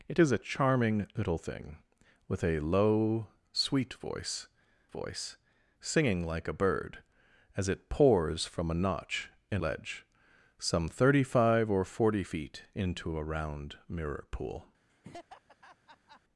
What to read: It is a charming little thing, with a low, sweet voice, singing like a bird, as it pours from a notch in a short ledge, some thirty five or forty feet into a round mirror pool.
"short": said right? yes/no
no